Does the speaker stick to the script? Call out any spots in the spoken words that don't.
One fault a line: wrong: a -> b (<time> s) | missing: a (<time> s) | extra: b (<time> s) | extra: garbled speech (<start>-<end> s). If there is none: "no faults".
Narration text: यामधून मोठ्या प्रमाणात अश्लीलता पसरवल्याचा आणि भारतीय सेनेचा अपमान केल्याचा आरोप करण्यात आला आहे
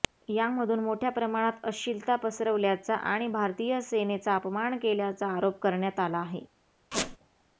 no faults